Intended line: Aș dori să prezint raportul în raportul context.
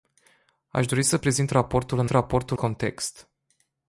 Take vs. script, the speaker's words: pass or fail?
pass